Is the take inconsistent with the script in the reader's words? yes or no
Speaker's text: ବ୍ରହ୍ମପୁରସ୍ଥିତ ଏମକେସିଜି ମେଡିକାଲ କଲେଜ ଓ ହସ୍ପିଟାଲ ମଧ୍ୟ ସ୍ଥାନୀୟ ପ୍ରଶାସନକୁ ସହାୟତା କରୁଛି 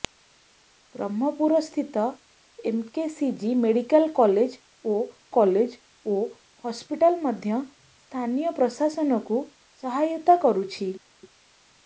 yes